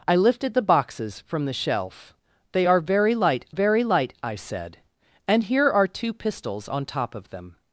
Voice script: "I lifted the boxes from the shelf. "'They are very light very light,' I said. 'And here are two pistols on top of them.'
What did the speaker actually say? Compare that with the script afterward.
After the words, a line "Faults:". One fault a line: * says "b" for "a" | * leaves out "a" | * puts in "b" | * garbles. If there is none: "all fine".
"I lifted the boxes from the shelf. "'They are very light very light,' I said. 'And here are two pistols on top of them.'
Faults:
all fine